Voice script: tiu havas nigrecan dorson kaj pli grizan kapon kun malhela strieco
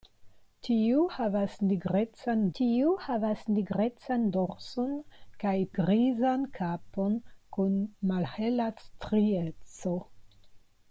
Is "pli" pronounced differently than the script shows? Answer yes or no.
yes